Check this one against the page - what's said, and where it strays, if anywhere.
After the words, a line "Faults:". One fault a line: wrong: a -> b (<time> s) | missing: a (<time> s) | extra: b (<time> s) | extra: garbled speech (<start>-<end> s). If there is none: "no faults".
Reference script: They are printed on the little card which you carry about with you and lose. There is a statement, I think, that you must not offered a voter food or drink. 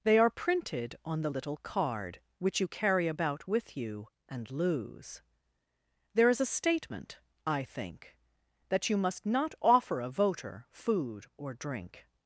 They are printed on the little card which you carry about with you and lose. There is a statement, I think, that you must not offer a voter food or drink.
Faults:
wrong: offered -> offer (9.6 s)